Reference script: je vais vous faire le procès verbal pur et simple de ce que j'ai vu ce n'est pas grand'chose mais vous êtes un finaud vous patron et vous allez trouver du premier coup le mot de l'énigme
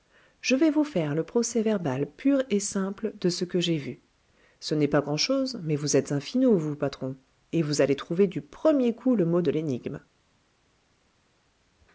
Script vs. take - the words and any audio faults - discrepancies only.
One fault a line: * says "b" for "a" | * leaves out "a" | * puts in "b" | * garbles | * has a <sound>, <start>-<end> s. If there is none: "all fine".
all fine